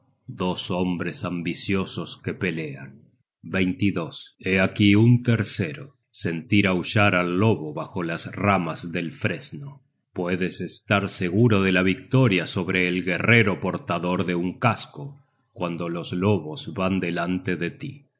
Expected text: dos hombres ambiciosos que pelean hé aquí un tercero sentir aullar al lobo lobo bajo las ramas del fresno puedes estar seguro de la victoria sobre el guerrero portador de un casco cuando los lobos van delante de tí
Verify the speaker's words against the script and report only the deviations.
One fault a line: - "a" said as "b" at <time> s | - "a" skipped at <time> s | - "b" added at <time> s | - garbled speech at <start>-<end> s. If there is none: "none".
- "lobo" skipped at 7.7 s